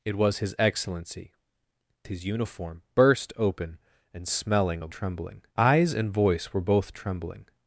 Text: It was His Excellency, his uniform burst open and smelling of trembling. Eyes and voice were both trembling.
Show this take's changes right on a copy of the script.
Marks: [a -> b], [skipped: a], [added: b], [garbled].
It was His Excellency, his uniform burst open and smelling of trembling. Eyes and voice were both trembling.